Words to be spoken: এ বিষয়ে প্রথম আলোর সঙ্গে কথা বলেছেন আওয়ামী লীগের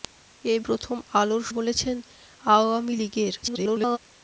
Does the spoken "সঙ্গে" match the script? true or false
false